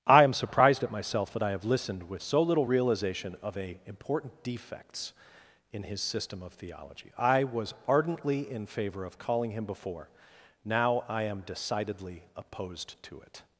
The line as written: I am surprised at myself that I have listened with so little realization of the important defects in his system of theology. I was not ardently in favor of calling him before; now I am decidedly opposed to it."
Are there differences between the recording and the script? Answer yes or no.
yes